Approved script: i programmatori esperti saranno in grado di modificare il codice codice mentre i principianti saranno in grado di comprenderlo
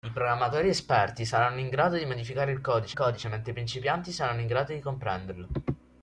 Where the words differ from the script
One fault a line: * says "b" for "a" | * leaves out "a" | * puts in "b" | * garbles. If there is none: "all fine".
all fine